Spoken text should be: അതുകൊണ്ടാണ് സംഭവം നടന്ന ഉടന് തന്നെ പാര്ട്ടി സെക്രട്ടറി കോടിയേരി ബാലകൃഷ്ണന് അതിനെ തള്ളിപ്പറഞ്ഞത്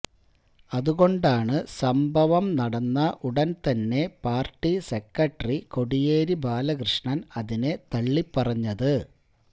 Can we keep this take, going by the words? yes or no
yes